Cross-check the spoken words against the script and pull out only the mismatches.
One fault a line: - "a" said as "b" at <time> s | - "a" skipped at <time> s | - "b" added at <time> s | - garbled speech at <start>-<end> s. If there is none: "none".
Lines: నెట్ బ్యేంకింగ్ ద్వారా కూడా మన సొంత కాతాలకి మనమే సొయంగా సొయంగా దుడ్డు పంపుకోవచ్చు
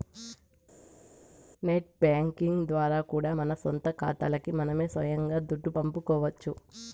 - "సొయంగా" skipped at 5.4 s